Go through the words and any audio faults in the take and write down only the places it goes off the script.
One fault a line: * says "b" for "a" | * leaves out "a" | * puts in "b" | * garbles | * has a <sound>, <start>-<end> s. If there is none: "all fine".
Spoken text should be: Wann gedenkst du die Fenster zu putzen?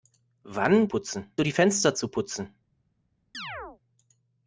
* says "putzen" for "gedenkst"
* has a chirp, 3.3-3.8 s